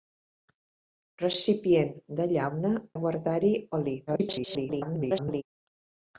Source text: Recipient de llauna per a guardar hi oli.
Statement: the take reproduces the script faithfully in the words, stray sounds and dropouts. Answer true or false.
false